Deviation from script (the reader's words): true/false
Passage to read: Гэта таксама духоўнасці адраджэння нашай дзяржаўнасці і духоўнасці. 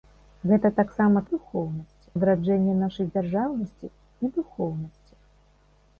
false